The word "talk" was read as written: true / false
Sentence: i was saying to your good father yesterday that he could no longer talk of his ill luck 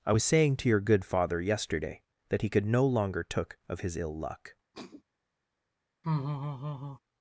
false